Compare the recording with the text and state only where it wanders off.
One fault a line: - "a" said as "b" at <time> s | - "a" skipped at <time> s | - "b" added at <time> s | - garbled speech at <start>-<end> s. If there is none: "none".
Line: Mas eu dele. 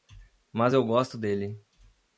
- "gosto" added at 0.9 s